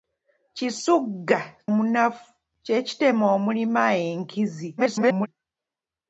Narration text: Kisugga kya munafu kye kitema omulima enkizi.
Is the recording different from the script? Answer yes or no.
yes